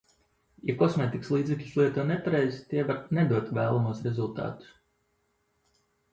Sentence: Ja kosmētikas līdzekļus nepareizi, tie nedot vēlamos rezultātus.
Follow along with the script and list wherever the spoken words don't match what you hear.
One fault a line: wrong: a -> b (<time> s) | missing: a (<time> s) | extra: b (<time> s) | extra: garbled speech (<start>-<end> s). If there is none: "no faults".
extra: lieto (1.8 s)
extra: var (2.9 s)